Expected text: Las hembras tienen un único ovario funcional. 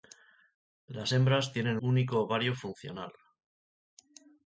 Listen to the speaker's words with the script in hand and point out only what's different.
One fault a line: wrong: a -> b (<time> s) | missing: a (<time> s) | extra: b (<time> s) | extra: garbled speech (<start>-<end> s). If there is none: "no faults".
missing: un (1.8 s)